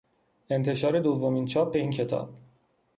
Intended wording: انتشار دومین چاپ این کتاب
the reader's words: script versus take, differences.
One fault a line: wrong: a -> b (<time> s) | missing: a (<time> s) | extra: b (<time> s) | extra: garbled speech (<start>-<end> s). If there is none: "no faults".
no faults